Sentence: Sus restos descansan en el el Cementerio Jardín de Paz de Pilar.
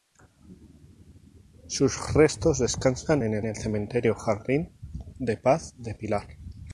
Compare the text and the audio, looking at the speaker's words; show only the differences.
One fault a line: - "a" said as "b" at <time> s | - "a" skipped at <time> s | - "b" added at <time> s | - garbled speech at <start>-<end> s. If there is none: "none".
none